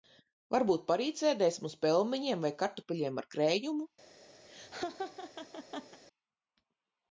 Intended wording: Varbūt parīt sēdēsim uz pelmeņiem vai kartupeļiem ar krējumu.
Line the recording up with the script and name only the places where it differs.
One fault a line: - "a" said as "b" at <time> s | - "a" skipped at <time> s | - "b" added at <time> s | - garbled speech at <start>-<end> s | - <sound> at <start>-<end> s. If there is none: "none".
- laugh at 4.4-6.0 s